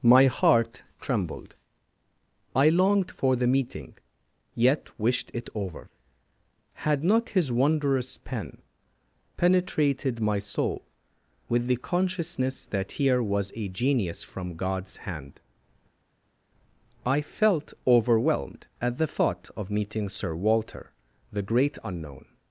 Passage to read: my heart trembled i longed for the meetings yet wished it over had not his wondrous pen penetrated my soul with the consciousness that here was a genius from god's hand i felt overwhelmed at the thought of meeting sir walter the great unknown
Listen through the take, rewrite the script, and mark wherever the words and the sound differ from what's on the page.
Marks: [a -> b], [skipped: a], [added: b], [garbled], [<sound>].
my heart trembled i longed for the [meetings -> meeting] yet wished it over had not his wondrous pen penetrated my soul with the consciousness that here was a genius from god's hand i felt overwhelmed at the thought of meeting sir walter the great unknown